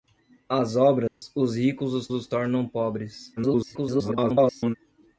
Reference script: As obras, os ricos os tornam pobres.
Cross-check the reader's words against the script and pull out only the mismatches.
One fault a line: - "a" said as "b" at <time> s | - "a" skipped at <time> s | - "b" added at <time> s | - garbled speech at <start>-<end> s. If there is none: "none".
- "os" added at 2.1 s
- garbled speech at 3.4-4.8 s